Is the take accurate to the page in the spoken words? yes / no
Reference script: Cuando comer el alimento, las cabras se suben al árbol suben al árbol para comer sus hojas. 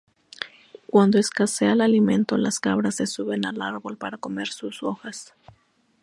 no